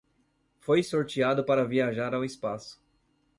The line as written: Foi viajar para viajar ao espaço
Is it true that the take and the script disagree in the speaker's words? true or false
true